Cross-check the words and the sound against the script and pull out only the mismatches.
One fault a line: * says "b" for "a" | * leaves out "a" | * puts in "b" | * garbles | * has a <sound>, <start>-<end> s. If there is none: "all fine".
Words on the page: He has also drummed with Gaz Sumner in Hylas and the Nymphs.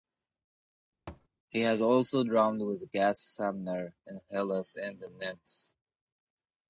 * has a thud, 1.1-1.3 s